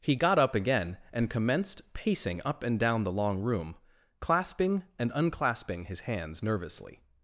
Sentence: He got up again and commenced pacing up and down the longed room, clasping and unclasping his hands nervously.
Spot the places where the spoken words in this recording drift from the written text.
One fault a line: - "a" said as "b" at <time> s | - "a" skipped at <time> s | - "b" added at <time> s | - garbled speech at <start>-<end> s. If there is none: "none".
- "longed" said as "long" at 3.1 s